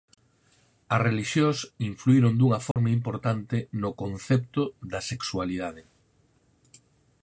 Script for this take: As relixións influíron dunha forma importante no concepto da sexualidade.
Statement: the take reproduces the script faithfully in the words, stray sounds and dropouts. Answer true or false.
false